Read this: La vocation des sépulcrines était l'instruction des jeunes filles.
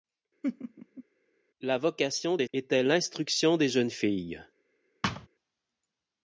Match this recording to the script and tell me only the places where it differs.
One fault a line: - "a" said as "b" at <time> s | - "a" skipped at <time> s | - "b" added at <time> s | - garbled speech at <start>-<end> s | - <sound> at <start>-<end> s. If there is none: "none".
- laugh at 0.4-1.0 s
- "sépulcrines" skipped at 2.5 s
- thud at 5.0-5.3 s